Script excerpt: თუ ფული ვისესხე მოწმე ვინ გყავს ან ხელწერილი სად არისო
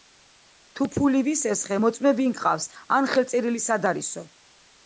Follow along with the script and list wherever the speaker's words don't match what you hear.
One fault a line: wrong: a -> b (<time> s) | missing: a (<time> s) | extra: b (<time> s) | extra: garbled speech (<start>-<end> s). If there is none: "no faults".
no faults